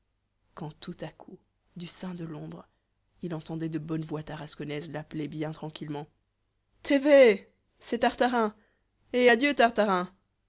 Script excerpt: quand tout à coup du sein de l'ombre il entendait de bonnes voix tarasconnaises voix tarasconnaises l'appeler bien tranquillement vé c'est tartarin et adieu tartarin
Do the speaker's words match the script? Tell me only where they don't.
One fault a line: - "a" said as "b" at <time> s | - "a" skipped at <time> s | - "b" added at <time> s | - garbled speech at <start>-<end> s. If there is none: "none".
- "voix tarasconnaises" skipped at 4.9 s
- "té" added at 6.8 s